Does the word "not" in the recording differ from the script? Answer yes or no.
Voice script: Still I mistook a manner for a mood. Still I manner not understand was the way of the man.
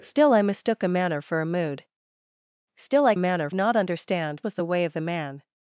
no